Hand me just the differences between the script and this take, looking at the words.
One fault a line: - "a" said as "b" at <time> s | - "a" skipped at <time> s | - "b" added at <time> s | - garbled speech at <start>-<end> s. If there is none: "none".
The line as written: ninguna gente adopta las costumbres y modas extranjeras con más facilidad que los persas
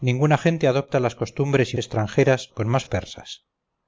- "modas" skipped at 1.8 s
- "facilidad que los" skipped at 2.8 s